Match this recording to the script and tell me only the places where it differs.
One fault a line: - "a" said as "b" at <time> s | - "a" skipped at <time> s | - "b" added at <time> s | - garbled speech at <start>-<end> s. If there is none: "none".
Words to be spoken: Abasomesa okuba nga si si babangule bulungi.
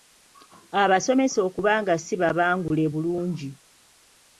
- "si" skipped at 2.1 s